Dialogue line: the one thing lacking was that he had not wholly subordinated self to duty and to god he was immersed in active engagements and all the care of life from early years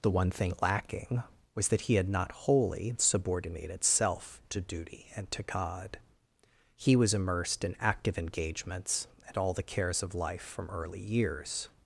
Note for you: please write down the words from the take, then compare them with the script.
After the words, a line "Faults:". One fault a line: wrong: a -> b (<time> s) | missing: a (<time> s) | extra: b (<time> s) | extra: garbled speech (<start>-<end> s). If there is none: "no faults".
the one thing lacking was that he had not wholly subordinated self to duty and to god he was immersed in active engagements and all the cares of life from early years
Faults:
wrong: care -> cares (9.6 s)